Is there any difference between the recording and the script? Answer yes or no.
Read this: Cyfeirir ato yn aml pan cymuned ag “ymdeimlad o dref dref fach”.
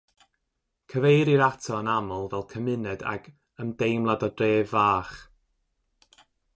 yes